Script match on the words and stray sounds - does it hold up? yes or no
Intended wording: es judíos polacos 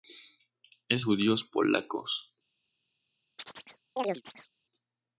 no